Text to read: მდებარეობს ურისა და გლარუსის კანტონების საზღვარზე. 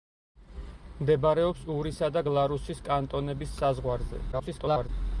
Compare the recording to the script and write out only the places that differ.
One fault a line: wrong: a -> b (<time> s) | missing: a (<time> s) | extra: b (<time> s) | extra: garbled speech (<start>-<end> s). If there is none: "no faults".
extra: garbled speech (4.3-4.9 s)